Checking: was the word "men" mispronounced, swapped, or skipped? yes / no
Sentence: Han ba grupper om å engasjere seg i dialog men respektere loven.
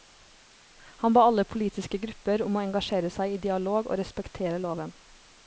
yes